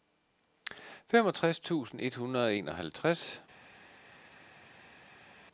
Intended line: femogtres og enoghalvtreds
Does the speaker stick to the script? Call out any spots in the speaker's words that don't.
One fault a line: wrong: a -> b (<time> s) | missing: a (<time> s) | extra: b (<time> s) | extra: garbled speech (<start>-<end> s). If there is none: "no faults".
extra: tusind et hundrede (1.6 s)